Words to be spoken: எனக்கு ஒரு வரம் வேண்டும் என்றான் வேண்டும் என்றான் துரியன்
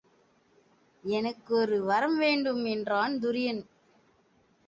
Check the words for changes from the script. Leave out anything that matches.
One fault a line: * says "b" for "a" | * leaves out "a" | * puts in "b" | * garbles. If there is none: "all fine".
* leaves out "வேண்டும் என்றான்"